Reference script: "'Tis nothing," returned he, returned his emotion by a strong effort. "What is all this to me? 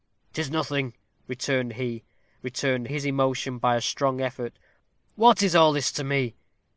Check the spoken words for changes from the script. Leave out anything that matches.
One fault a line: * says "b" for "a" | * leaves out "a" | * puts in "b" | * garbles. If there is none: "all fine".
all fine